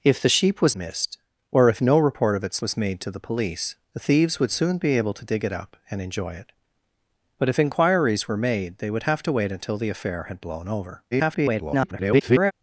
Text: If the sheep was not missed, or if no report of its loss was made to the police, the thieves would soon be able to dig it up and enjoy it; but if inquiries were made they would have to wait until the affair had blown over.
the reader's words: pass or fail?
fail